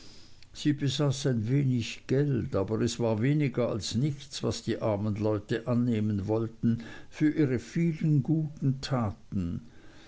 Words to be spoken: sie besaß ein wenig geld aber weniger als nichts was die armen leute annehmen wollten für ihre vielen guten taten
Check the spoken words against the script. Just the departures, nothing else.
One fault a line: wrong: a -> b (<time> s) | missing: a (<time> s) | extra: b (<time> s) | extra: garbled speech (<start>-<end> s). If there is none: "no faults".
extra: es war (2.8 s)